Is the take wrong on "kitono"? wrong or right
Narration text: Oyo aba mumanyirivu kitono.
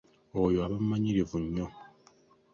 wrong